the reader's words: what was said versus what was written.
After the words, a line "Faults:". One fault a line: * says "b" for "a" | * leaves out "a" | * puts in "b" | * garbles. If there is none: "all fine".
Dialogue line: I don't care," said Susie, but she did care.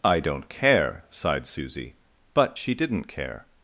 I don't care," sighed Susie, but she didn't care.
Faults:
* says "sighed" for "said"
* says "didn't" for "did"